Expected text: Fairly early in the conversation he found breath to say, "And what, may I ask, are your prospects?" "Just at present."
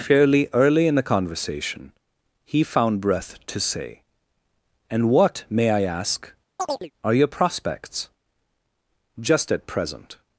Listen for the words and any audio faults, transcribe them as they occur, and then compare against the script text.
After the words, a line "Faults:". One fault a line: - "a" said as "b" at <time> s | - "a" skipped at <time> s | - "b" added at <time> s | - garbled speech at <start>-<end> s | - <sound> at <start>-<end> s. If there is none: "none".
Fairly early in the conversation he found breath to say, "And what, may I ask, are your prospects?" "Just at present."
Faults:
- chirp at 6.6-6.9 s